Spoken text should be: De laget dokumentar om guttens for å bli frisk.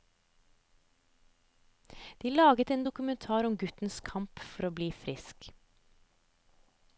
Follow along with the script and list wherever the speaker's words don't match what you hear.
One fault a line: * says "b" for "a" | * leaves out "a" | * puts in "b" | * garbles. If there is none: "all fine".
* puts in "en"
* puts in "kamp"